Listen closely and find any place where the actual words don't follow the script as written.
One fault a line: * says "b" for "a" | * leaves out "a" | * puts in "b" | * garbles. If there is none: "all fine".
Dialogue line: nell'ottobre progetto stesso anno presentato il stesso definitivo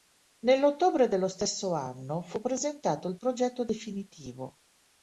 * says "dello" for "progetto"
* puts in "fu"
* says "progetto" for "stesso"